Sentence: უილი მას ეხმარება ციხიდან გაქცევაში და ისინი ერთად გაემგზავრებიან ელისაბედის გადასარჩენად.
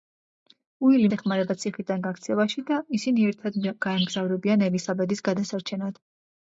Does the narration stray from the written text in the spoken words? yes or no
yes